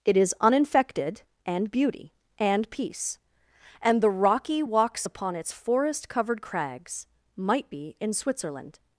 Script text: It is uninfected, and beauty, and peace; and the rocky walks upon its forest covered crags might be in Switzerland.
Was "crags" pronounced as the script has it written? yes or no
yes